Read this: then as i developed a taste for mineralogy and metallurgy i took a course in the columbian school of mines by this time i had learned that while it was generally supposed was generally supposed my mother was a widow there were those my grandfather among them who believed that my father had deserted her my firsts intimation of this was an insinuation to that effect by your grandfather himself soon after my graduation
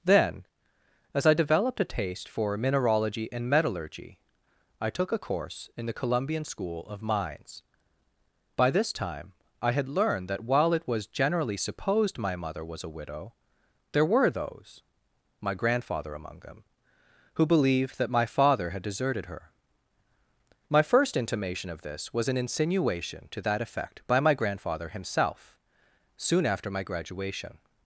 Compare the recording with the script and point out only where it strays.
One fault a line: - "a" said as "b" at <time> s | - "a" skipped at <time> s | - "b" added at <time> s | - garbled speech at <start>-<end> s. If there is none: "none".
- "was generally supposed" skipped at 12.2 s
- "firsts" said as "first" at 20.8 s
- "your" said as "my" at 24.2 s